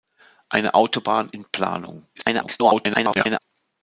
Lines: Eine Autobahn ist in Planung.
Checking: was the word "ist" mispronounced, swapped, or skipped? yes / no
yes